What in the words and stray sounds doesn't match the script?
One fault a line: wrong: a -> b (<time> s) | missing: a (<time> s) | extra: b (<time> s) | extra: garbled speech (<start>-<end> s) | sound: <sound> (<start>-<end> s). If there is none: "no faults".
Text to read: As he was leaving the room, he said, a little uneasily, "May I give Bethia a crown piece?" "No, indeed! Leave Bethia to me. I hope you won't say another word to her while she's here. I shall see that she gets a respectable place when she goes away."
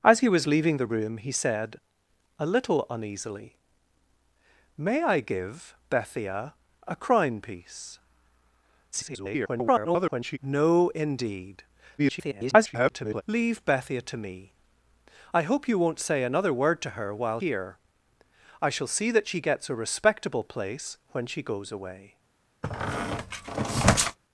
extra: garbled speech (8.9-10.4 s)
extra: garbled speech (12.0-13.2 s)
missing: she's (17.4 s)
sound: squeak (22.6-24.2 s)